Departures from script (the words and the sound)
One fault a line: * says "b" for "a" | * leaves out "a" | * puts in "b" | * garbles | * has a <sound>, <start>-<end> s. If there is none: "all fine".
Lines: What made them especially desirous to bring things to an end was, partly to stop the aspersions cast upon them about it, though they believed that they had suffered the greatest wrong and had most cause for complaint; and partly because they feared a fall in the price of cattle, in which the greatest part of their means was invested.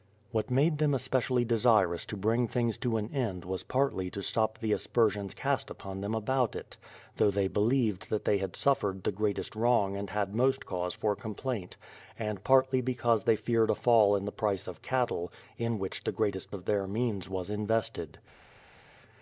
* leaves out "part"